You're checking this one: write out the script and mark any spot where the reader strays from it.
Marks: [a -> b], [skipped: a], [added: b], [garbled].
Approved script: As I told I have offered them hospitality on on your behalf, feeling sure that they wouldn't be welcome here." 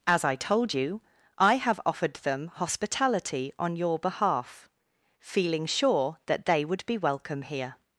As I told [added: you] I have offered them hospitality on [skipped: on] your behalf, feeling sure that they [wouldn't -> would] be welcome here."